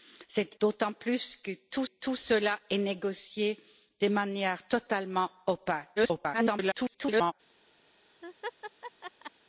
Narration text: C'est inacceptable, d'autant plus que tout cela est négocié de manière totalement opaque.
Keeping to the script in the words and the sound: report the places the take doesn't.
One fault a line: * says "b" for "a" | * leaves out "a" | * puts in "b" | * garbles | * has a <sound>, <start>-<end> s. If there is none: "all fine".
* leaves out "inacceptable"
* puts in "tout"
* garbles
* has a laugh, 8.2-9.3 s